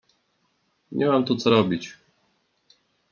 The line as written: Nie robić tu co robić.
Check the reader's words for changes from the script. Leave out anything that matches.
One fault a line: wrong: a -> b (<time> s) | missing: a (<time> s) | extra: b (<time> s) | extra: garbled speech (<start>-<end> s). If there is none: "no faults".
wrong: robić -> mam (1.1 s)